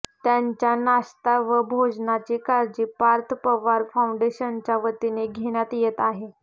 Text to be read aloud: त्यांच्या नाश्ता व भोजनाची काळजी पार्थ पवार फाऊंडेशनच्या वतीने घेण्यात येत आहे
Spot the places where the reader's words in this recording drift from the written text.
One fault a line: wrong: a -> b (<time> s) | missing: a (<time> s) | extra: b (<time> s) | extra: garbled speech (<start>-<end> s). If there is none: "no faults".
no faults